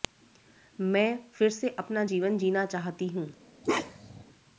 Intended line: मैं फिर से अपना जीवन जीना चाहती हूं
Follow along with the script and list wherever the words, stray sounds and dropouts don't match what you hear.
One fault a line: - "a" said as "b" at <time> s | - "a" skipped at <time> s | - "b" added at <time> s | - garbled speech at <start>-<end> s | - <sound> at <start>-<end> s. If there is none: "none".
- bark at 3.6-4.2 s